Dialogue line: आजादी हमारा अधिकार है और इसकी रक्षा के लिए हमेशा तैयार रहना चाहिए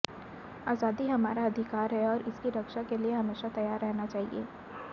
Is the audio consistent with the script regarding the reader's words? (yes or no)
yes